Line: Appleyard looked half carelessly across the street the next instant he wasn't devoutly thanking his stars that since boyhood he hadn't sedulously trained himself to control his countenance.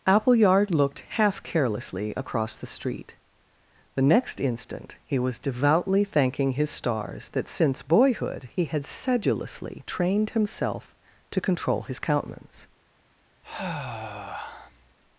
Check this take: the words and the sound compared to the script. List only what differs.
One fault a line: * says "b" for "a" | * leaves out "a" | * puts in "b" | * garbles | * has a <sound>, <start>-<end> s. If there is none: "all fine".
* says "was" for "wasn't"
* says "had" for "hadn't"
* has a sigh, 13.4-14.9 s